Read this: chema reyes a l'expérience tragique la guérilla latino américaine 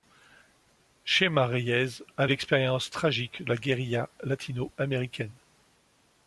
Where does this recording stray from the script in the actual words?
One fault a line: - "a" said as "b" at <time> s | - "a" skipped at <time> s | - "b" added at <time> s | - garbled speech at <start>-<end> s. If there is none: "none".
none